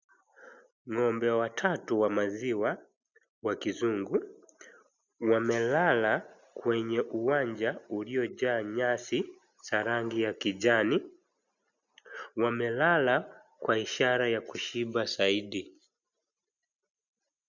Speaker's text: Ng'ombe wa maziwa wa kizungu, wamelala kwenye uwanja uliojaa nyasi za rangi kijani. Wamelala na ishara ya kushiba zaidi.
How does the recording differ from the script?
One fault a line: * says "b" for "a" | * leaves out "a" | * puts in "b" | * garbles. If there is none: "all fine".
* puts in "watatu"
* puts in "ya"
* says "kwa" for "na"